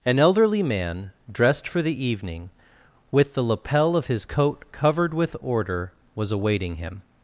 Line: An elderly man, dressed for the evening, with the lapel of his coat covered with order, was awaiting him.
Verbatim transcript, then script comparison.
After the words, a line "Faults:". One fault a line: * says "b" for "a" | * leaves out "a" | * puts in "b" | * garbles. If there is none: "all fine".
An elderly man, dressed for the evening, with the lapel of his coat covered with order, was awaiting him.
Faults:
all fine